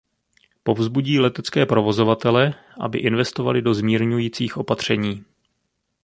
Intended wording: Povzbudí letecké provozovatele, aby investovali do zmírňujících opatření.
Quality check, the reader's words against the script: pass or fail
pass